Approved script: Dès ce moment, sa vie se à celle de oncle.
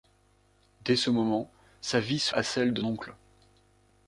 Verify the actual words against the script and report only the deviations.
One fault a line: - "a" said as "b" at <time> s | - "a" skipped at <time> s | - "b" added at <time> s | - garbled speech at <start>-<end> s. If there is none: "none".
none